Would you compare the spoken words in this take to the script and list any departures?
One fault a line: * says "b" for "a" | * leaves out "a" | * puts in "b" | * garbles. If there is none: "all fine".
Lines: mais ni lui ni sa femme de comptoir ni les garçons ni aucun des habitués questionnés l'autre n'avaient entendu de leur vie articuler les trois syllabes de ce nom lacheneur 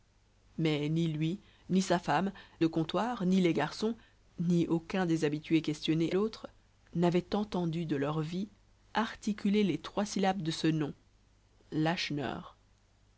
all fine